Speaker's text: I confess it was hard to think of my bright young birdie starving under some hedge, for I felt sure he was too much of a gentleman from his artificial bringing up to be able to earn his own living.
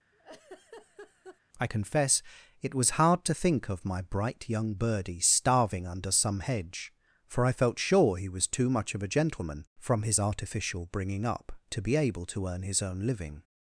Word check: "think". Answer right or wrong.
right